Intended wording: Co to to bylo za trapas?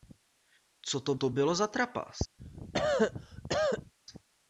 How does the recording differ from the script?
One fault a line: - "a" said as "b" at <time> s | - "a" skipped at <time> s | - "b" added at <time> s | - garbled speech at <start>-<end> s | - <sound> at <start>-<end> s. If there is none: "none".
- cough at 2.4-3.9 s